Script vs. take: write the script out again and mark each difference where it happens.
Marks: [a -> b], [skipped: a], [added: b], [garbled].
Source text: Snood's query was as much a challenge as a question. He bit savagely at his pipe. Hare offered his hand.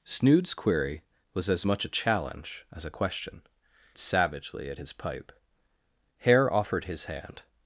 Snood's query was as much a challenge as a question. [skipped: He bit] savagely at his pipe. Hare offered his hand.